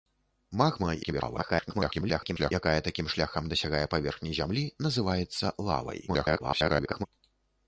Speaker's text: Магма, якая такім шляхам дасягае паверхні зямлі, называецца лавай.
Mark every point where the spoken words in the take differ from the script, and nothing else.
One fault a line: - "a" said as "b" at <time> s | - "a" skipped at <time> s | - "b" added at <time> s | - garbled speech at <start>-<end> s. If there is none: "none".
- garbled speech at 1.0-2.5 s
- garbled speech at 6.1-7.1 s